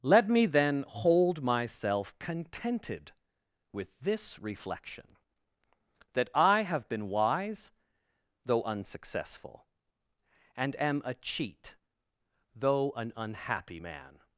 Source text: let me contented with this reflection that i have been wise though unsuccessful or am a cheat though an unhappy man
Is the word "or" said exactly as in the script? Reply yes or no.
no